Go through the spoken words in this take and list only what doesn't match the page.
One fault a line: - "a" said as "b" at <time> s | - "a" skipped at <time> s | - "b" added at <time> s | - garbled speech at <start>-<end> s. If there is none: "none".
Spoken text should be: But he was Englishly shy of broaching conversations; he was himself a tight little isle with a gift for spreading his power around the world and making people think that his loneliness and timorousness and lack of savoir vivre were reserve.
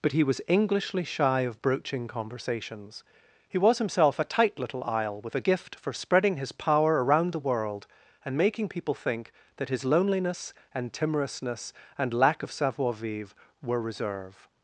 none